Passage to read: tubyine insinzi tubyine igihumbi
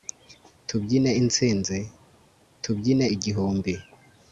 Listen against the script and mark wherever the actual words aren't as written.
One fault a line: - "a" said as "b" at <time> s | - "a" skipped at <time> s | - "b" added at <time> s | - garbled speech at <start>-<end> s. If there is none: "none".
none